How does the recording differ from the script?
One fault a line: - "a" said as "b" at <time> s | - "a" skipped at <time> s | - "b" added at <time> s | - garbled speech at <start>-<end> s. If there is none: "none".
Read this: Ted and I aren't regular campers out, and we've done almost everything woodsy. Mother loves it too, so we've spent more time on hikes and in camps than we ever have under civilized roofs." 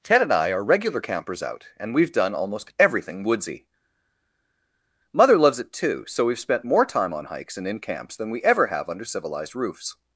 - "aren't" said as "are" at 0.5 s